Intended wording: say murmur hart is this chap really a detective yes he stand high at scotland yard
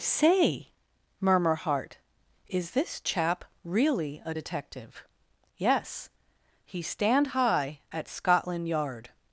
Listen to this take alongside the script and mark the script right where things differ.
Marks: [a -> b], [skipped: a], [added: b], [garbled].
say murmur hart is this chap really a detective yes he stand high at scotland yard